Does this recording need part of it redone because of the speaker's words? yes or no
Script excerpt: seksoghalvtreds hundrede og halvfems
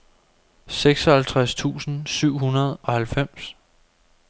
yes